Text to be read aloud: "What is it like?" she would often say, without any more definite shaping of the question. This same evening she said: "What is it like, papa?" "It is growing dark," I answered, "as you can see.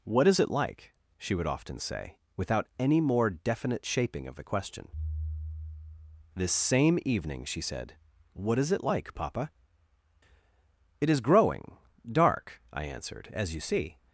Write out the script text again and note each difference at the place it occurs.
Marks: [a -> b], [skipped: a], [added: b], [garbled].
"What is it like?" she would often say, without any more definite shaping of the question. This same evening she said: "What is it like, papa?" "It is growing dark," I answered, "as you [skipped: can] see.